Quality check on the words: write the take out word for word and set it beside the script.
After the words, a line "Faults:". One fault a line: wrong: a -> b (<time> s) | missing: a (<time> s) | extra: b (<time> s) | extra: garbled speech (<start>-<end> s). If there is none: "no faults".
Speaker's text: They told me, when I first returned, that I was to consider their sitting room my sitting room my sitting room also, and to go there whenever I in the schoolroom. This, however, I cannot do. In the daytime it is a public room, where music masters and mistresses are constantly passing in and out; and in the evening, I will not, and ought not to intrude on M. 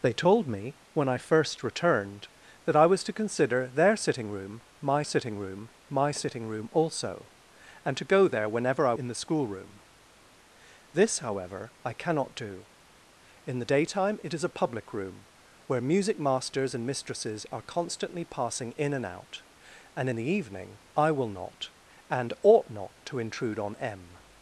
They told me, when I first returned, that I was to consider their sitting room my sitting room my sitting room also, and to go there whenever I in the schoolroom. This, however, I cannot do. In the daytime it is a public room, where music masters and mistresses are constantly passing in and out; and in the evening, I will not, and ought not to intrude on M.
Faults:
no faults